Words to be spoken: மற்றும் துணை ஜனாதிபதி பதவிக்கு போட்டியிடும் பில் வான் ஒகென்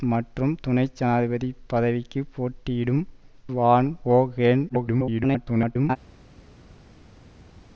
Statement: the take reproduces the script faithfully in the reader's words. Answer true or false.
false